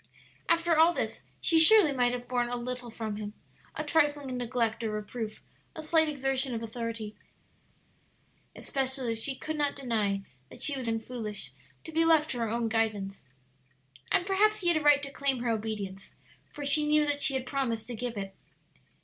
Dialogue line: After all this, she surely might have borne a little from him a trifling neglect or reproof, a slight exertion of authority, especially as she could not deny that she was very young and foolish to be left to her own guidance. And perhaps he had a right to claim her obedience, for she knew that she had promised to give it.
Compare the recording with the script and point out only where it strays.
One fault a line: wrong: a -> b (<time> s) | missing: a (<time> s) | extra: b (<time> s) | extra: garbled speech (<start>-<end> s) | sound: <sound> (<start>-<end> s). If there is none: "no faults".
missing: very young (10.9 s)